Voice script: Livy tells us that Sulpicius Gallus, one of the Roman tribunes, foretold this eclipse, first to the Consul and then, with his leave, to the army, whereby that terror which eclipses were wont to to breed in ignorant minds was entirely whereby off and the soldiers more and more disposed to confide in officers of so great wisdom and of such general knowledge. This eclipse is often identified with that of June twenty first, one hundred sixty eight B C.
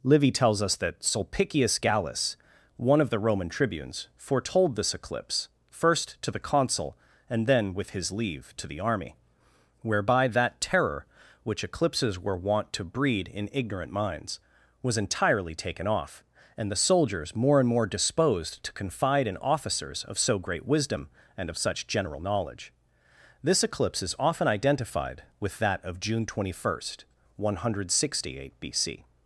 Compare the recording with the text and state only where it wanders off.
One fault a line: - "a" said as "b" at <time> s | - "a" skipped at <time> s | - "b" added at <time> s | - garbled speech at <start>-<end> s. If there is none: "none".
- "to" skipped at 12.8 s
- "whereby" said as "taken" at 15.5 s